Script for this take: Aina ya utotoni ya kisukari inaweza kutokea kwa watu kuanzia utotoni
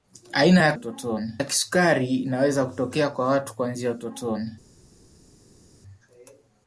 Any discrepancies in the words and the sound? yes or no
no